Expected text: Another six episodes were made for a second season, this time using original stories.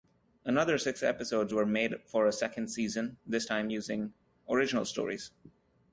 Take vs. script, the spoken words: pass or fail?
pass